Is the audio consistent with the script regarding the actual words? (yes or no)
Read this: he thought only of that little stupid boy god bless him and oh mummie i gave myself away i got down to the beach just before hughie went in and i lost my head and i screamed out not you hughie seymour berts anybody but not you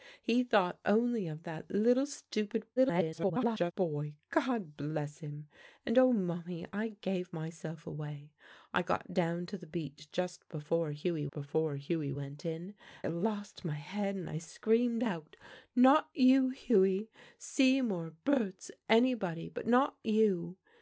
no